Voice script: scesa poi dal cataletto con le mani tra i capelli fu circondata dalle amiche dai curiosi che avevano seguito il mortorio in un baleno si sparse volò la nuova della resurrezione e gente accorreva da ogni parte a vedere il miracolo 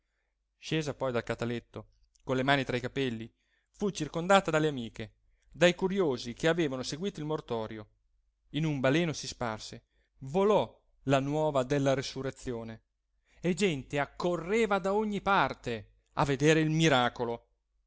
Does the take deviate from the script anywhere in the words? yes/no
no